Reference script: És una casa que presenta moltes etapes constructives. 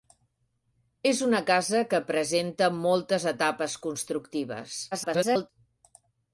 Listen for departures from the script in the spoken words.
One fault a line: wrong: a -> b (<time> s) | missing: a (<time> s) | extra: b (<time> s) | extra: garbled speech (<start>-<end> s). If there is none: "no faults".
extra: garbled speech (4.9-5.5 s)